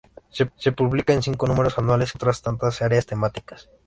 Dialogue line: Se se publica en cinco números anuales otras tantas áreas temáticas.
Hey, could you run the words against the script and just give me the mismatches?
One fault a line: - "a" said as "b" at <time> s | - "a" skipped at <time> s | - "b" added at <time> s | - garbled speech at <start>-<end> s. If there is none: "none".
none